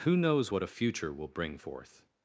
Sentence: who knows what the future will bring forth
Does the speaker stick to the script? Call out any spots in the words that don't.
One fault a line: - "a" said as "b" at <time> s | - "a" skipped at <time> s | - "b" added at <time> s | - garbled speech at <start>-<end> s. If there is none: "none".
- "the" said as "a" at 0.6 s